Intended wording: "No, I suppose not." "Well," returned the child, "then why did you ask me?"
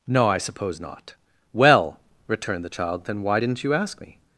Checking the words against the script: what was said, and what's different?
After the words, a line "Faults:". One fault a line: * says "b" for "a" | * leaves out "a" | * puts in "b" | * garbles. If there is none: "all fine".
"No, I suppose not." "Well," returned the child, "then why didn't you ask me?"
Faults:
* says "didn't" for "did"